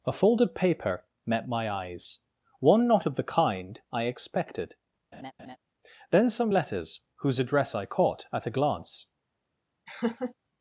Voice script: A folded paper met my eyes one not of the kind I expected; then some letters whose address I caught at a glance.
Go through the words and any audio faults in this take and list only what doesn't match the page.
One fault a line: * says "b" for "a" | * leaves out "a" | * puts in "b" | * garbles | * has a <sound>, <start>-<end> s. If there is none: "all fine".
* has a laugh, 5.1-5.6 s
* has a laugh, 9.9-10.3 s